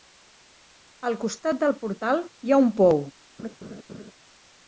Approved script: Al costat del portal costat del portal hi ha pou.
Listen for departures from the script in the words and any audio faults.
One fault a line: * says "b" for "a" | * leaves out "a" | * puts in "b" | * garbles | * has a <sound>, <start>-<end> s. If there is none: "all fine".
* leaves out "costat del portal"
* puts in "un"
* has a laugh, 3.4-4.1 s